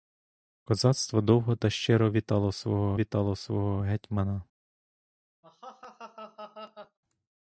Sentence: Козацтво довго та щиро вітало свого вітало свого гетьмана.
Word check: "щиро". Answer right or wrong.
right